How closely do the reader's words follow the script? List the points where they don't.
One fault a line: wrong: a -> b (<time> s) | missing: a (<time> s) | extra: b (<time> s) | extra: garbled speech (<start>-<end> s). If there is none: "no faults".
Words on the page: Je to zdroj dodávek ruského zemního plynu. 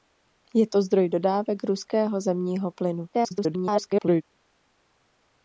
extra: garbled speech (3.1-4.2 s)